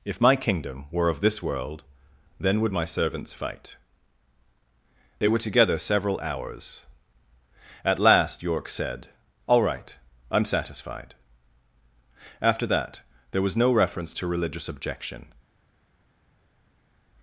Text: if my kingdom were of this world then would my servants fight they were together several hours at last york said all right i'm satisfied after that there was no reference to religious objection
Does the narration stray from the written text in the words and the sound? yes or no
no